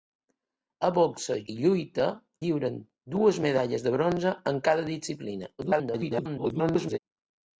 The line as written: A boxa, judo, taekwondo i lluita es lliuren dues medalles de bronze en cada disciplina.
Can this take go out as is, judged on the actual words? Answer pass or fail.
fail